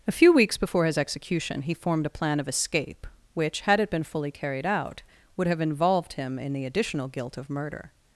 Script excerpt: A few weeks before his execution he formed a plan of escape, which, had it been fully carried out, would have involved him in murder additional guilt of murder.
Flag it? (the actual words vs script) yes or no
yes